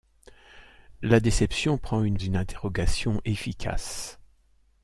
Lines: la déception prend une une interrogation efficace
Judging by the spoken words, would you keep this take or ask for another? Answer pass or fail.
pass